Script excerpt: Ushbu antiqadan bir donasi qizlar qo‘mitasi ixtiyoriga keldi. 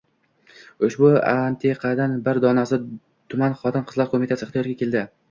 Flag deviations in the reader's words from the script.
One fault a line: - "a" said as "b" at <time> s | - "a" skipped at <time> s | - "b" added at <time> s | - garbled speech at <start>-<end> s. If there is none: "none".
- "tuman xotin" added at 3.3 s